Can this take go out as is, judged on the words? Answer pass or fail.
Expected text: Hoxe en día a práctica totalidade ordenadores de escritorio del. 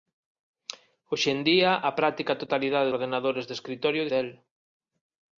pass